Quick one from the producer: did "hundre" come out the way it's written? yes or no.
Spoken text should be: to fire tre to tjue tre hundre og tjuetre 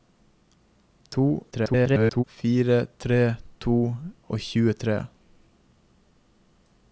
no